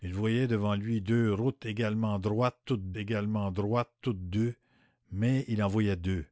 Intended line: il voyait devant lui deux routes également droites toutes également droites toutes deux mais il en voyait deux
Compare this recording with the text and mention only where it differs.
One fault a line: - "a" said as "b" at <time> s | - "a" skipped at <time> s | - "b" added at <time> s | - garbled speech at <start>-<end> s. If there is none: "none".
none